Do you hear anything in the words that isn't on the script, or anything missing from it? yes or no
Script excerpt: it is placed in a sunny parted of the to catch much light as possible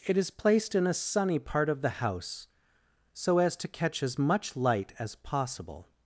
yes